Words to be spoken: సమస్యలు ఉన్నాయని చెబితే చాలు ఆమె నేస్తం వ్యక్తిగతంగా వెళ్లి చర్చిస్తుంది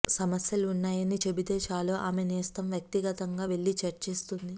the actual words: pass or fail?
pass